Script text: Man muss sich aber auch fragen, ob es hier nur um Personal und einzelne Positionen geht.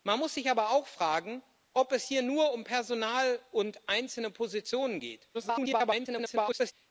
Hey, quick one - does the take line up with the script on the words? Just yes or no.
no